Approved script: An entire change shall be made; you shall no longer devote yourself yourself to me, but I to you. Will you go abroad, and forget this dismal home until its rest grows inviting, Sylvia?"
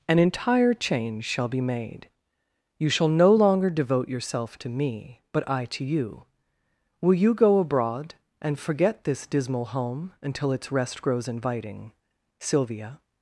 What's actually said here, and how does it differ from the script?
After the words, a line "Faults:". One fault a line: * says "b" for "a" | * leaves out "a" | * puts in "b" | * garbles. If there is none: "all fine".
An entire change shall be made; you shall no longer devote yourself to me, but I to you. Will you go abroad, and forget this dismal home until its rest grows inviting, Sylvia?"
Faults:
* leaves out "yourself"